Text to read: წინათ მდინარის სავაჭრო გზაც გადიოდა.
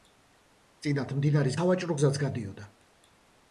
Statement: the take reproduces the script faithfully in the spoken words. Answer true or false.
true